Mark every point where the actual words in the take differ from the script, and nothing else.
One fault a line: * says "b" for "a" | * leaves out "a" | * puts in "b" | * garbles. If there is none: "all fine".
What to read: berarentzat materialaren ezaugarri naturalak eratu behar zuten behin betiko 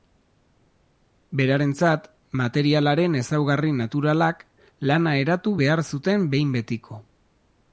* puts in "lana"